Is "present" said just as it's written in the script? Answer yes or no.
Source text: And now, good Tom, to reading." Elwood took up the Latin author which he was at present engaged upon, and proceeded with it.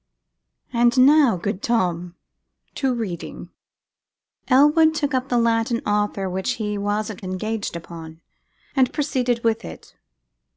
no